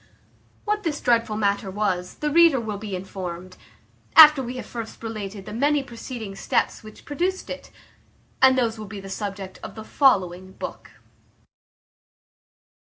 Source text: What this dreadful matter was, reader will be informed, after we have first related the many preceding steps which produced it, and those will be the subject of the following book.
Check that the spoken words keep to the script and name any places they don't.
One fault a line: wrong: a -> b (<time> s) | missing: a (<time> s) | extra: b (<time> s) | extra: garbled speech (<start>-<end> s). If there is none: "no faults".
extra: the (2.1 s)